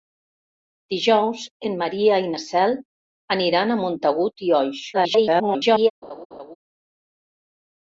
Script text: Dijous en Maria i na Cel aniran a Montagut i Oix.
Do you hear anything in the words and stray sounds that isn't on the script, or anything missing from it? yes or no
yes